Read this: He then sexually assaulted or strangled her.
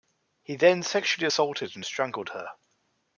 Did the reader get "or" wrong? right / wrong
wrong